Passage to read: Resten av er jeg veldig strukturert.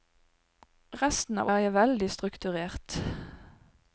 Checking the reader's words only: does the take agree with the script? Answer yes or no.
yes